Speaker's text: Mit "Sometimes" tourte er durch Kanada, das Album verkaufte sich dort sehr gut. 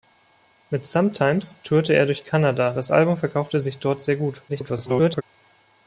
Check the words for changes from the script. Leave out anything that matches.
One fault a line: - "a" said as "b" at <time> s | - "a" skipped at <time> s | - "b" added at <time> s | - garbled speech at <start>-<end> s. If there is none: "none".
- garbled speech at 4.5-5.2 s